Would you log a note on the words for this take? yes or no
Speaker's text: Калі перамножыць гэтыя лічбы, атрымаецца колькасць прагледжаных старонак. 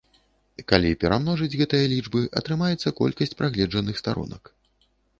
no